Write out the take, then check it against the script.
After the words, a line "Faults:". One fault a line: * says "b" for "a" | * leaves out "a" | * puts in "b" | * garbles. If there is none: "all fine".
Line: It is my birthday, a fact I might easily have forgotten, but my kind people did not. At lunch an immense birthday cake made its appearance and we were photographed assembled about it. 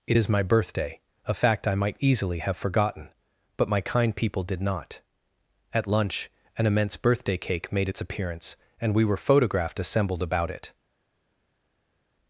It is my birthday, a fact I might easily have forgotten, but my kind people did not. At lunch an immense birthday cake made its appearance and we were photographed assembled about it.
Faults:
all fine